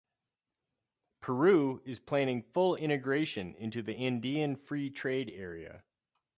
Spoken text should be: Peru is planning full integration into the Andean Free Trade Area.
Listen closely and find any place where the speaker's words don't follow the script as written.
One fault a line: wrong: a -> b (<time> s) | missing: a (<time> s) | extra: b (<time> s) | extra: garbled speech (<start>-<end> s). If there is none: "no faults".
no faults